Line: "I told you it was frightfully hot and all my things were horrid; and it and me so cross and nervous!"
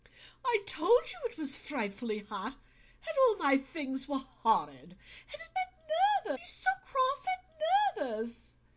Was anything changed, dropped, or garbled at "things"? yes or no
no